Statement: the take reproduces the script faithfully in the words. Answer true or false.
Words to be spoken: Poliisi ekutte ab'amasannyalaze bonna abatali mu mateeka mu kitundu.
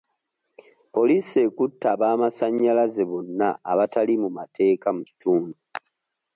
true